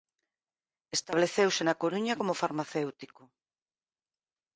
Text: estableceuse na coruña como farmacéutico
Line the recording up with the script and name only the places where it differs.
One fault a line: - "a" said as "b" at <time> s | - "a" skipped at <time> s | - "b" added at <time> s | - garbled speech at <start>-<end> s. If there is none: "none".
none